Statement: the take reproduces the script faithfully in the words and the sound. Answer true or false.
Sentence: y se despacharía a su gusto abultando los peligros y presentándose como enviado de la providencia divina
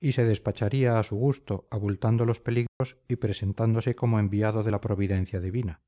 false